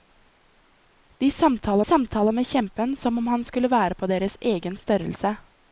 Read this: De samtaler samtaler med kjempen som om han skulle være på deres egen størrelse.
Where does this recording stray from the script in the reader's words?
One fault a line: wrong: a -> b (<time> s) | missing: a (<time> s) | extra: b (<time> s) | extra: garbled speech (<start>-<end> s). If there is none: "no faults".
no faults